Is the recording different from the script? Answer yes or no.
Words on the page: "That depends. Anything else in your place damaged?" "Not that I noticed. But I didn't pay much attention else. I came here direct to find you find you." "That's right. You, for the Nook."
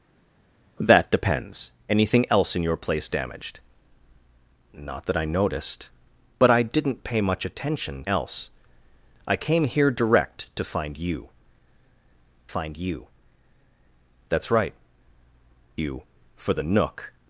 no